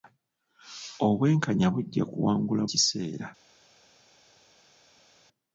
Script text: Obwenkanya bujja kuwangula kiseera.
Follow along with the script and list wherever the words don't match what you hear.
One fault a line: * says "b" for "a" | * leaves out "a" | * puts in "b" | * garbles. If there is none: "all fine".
all fine